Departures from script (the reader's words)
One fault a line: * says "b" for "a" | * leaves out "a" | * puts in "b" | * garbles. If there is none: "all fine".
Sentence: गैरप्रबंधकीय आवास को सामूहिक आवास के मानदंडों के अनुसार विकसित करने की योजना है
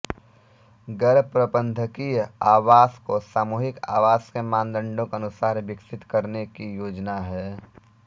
all fine